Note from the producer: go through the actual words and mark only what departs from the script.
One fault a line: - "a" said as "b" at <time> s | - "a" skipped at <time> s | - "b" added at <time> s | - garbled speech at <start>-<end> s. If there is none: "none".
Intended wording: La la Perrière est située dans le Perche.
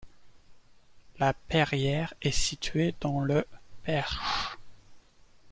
- "la" skipped at 1.3 s